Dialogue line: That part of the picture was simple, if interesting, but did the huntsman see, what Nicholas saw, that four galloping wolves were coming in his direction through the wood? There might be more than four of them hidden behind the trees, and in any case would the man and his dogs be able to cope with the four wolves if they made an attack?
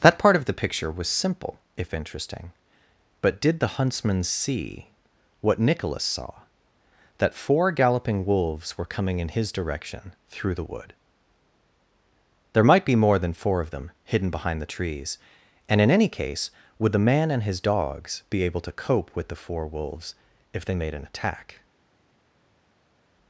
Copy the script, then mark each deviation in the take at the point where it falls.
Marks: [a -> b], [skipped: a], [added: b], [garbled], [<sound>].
That part of the picture was simple, if interesting, but did the huntsman see, what Nicholas saw, that four galloping wolves were coming in his direction through the wood? There might be more than four of them hidden behind the trees, and in any case would the man and his dogs be able to cope with the four wolves if they made an attack?